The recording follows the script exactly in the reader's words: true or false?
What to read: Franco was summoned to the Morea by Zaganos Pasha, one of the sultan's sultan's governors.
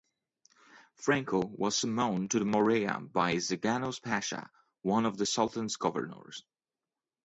false